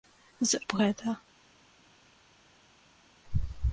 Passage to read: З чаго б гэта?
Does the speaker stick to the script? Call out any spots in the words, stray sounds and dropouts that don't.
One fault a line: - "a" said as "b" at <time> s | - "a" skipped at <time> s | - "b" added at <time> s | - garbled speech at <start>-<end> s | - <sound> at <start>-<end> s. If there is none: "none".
- "чаго" skipped at 0.6 s